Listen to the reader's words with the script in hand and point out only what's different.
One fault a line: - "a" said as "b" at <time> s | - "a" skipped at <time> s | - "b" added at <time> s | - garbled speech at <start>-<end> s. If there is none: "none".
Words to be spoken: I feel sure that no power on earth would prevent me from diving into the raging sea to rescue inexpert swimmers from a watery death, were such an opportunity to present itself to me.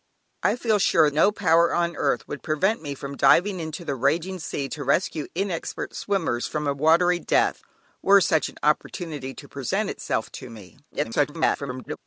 - "that" skipped at 1.1 s
- garbled speech at 10.9-12.0 s